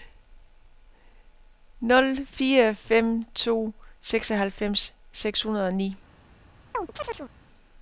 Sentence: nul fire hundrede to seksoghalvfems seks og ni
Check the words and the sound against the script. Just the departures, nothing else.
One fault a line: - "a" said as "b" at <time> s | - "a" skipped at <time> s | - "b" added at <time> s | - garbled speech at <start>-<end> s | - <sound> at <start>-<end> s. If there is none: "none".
- "hundrede" said as "fem" at 2.8 s
- "hundrede" added at 5.4 s
- chirp at 6.7-7.3 s